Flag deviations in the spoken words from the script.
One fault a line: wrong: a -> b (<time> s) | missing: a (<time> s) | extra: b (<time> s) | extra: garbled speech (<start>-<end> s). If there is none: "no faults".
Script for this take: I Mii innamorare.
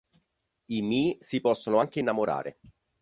extra: si possono anche (1.2 s)